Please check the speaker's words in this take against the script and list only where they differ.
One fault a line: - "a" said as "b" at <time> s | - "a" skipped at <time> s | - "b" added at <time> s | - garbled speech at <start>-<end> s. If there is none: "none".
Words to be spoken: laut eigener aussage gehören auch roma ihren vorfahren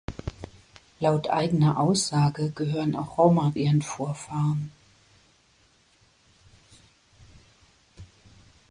none